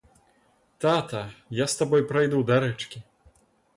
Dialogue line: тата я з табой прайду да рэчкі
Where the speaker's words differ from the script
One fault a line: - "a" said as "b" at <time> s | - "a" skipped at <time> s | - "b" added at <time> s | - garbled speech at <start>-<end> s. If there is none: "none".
none